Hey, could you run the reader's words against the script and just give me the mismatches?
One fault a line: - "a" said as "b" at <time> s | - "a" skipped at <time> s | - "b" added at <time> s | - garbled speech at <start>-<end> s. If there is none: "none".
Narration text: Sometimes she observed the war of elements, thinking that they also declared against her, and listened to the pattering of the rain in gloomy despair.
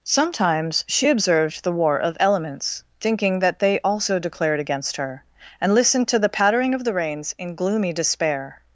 - "rain" said as "rains" at 6.9 s